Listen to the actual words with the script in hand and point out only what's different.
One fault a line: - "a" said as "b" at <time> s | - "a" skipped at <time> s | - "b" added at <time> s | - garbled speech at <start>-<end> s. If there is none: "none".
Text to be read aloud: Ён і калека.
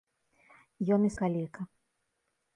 none